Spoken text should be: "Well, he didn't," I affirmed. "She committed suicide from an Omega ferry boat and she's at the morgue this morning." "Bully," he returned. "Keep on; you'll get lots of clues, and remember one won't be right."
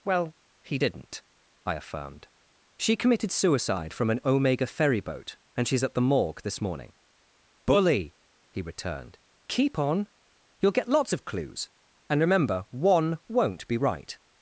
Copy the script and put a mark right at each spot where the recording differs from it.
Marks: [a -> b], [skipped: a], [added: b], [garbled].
"Well, he didn't," I affirmed. "She committed suicide from an Omega ferry boat and she's at the morgue this morning." "Bully," he returned. "Keep on; you'll get lots of clues, and remember one won't be right."